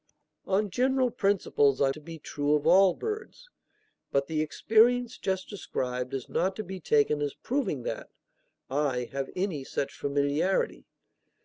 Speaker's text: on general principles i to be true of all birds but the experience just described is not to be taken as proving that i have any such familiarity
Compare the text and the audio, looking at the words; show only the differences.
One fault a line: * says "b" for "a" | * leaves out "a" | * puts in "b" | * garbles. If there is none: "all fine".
all fine